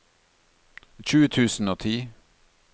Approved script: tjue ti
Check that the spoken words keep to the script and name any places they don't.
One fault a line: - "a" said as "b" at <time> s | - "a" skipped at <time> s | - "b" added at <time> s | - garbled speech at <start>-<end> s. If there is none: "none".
- "tusen og" added at 1.3 s